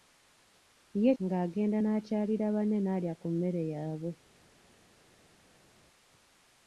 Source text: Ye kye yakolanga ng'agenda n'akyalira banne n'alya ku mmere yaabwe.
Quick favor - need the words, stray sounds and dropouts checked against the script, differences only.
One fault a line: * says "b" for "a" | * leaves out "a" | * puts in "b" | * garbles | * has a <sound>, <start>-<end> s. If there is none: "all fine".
* leaves out "kye yakolanga"